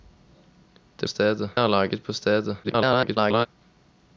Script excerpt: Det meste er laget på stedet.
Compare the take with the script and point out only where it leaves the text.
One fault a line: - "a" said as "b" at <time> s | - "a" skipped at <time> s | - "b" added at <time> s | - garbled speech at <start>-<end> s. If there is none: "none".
- "meste" said as "stedet" at 1.1 s
- garbled speech at 2.6-3.5 s